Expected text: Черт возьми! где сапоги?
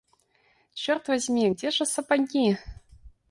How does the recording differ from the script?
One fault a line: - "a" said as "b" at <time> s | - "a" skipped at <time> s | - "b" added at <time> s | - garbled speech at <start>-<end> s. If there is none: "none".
- "же" added at 1.7 s